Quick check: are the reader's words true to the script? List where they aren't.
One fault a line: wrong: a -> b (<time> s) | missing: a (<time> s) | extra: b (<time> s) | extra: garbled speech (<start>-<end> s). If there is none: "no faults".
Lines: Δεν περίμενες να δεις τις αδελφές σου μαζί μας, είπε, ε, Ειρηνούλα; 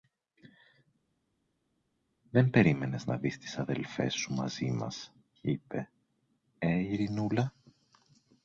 no faults